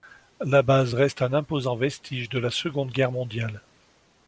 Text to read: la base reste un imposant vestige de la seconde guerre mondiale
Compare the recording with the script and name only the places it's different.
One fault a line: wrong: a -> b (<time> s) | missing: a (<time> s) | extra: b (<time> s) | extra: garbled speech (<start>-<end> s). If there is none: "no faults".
no faults